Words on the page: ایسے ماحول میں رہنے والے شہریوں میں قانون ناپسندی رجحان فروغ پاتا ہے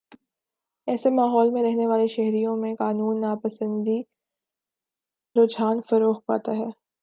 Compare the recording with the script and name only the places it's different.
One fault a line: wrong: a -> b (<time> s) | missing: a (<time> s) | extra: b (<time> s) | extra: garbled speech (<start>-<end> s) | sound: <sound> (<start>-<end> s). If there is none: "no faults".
no faults